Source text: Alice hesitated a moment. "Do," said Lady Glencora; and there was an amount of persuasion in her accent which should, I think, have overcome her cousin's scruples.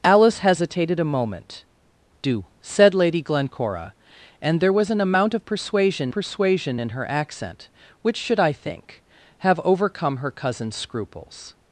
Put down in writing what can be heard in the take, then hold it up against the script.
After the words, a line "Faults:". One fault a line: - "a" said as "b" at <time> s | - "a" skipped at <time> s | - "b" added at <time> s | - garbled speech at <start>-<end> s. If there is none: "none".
Alice hesitated a moment. "Do," said Lady Glencora; and there was an amount of persuasion persuasion in her accent which should, I think, have overcome her cousin's scruples.
Faults:
- "persuasion" added at 6.1 s